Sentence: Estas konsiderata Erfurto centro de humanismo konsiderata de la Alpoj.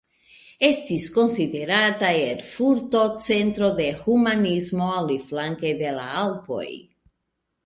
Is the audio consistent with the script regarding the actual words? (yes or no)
no